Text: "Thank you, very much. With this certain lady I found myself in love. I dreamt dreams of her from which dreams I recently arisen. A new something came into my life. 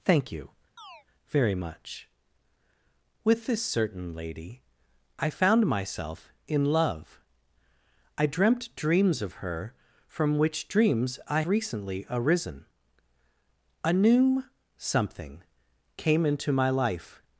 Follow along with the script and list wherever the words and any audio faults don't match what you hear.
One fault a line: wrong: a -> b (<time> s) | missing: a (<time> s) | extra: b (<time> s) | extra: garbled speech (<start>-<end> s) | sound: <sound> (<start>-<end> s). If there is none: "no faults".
sound: chirp (0.8-1.1 s)